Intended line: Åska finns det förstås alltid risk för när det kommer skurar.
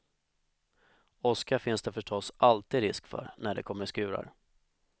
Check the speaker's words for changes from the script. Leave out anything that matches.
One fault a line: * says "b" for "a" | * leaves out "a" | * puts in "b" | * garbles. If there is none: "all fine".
all fine